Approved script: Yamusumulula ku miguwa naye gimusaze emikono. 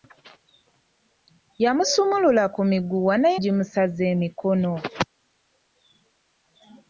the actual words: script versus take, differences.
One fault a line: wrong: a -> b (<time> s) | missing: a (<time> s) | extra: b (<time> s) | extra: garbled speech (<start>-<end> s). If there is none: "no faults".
no faults